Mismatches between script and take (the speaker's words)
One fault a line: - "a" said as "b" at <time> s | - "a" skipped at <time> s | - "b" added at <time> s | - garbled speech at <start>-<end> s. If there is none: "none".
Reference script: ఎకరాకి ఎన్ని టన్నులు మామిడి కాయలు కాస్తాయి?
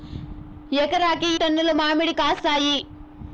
- "ఎన్ని" skipped at 1.3 s
- "కాయలు" skipped at 2.1 s